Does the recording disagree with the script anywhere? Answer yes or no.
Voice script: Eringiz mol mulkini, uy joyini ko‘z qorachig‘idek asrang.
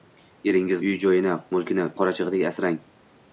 yes